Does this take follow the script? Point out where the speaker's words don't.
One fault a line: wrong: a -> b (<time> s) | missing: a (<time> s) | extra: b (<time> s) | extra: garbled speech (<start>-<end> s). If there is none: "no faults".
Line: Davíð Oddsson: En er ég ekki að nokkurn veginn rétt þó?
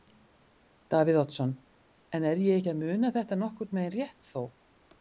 extra: muna þetta (2.8 s)